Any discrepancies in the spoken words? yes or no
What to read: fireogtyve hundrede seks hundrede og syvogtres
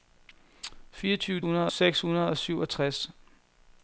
no